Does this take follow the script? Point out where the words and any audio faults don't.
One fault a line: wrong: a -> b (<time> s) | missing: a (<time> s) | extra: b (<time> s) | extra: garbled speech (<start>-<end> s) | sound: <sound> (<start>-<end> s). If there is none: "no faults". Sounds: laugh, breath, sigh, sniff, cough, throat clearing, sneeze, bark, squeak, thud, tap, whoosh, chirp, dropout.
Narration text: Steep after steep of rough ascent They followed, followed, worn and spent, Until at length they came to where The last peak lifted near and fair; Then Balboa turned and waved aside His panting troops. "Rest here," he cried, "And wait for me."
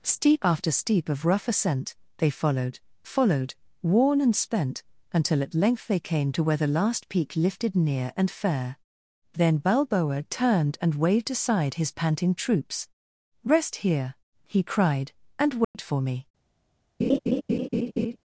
sound: dropout (15.6-15.7 s)
sound: laugh (17.0-18.2 s)